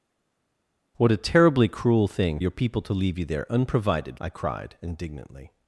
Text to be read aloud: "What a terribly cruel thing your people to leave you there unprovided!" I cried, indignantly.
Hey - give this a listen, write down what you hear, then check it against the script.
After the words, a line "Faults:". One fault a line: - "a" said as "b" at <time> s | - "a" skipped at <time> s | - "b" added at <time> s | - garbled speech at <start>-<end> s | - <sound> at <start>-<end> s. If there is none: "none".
"What a terribly cruel thing your people to leave you there unprovided!" I cried, indignantly.
Faults:
none